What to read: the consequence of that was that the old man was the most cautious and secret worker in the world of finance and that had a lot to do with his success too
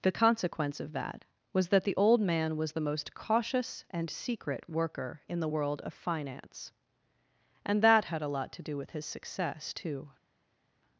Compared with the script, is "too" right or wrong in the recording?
right